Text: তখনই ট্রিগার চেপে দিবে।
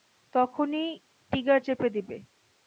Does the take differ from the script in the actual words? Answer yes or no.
no